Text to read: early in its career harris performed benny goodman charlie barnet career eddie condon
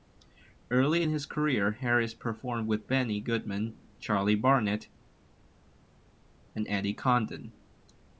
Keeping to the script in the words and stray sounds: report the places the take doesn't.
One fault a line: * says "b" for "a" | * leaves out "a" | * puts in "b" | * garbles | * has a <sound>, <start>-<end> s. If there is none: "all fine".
* says "his" for "its"
* puts in "with"
* says "and" for "career"